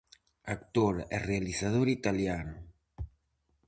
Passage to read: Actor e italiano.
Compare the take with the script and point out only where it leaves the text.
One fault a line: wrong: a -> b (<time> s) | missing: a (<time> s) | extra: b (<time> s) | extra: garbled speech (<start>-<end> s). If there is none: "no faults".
extra: realizador (1.3 s)